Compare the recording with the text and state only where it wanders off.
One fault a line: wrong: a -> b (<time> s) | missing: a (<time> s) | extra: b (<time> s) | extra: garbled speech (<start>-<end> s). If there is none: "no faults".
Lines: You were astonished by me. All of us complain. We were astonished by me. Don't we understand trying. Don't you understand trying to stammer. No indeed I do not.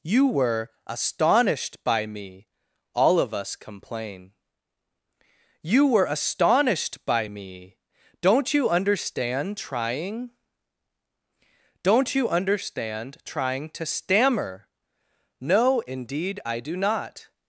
wrong: We -> You (5.6 s)
wrong: we -> you (8.5 s)